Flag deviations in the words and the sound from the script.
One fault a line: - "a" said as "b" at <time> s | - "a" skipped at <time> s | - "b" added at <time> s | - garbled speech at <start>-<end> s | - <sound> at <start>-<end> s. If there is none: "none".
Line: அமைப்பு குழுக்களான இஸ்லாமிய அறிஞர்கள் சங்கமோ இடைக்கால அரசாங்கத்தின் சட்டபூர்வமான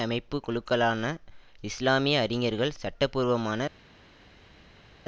- "சங்கமோ இடைக்கால அரசாங்கத்தின்" skipped at 2.8 s